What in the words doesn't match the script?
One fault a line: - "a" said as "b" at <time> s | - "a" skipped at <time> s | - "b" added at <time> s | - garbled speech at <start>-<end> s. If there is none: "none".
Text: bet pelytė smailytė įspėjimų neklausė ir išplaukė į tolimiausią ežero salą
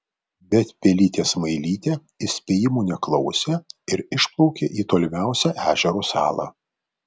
none